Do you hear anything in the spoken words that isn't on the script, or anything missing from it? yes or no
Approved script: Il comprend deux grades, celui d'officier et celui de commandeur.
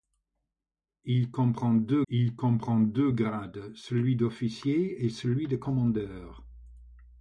yes